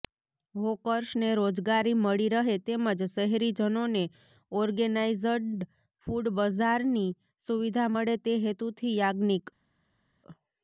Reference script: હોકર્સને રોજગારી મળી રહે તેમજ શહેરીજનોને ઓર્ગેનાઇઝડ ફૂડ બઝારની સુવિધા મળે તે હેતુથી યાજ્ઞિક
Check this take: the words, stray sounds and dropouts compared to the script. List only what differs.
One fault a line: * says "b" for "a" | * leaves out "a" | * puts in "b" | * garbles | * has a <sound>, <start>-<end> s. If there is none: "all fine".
all fine